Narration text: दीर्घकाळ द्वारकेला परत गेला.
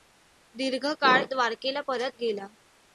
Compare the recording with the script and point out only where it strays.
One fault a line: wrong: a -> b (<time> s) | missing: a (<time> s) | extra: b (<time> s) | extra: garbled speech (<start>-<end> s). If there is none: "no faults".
no faults